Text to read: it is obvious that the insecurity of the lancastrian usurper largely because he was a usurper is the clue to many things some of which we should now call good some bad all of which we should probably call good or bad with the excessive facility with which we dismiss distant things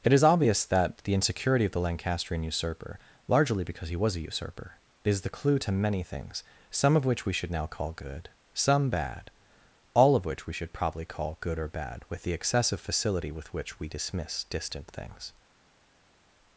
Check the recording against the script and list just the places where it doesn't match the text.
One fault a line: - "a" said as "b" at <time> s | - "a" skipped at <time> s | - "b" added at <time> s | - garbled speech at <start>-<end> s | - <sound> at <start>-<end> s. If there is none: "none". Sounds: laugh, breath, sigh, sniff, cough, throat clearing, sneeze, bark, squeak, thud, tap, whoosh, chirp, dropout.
none